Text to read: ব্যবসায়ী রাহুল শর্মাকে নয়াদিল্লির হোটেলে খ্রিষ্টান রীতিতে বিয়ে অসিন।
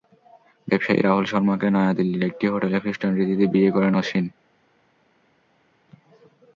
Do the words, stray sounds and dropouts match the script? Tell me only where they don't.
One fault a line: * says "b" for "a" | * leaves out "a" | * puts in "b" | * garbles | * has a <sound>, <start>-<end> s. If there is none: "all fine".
* puts in "একটি"
* puts in "করেন"